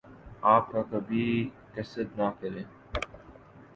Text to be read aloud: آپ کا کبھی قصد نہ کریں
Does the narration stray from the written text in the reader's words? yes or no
no